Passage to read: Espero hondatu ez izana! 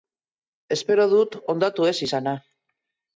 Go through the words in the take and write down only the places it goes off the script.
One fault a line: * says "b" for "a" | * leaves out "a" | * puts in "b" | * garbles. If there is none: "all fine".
* puts in "dut"